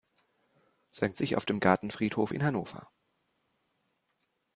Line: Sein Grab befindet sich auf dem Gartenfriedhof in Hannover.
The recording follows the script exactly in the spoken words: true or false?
false